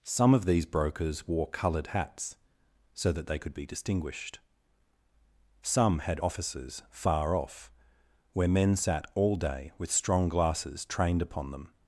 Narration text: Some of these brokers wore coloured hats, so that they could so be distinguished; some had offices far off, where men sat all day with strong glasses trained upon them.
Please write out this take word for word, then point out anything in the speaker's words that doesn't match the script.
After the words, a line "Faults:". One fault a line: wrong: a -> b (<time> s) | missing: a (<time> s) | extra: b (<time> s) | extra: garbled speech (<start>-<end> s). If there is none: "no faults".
Some of these brokers wore coloured hats, so that they could be distinguished; some had offices far off, where men sat all day with strong glasses trained upon them.
Faults:
missing: so (3.5 s)